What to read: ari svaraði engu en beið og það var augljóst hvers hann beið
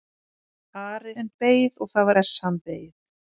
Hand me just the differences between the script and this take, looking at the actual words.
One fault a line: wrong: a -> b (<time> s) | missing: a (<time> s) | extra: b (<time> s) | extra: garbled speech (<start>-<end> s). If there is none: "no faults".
missing: svaraði engu (1.1 s)
missing: var augljóst (2.1 s)